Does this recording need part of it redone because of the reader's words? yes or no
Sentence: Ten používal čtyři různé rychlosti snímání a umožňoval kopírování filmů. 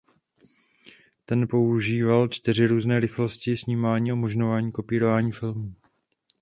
no